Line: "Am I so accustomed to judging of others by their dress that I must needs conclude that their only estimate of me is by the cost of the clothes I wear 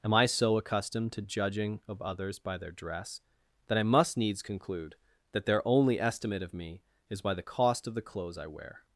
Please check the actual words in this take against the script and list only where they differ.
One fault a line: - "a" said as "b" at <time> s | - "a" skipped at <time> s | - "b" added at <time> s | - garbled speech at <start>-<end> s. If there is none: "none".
none